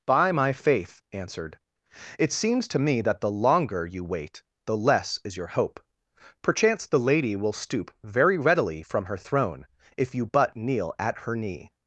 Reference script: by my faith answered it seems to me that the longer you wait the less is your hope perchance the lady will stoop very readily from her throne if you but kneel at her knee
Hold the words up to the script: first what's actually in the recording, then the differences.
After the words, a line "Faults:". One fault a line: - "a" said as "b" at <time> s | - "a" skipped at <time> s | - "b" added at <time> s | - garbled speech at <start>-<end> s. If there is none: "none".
by my faith answered it seems to me that the longer you wait the less is your hope perchance the lady will stoop very readily from her throne if you but kneel at her knee
Faults:
none